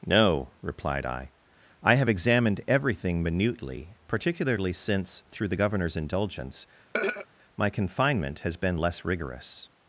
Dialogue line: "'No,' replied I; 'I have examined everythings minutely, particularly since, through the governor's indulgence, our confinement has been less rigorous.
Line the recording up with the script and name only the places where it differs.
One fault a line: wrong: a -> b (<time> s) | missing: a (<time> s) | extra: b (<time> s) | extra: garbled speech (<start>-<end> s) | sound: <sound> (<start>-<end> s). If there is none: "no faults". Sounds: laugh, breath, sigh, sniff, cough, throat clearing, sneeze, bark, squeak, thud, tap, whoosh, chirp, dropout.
wrong: everythings -> everything (2.7 s)
sound: throat clearing (6.9-7.3 s)
wrong: our -> my (7.6 s)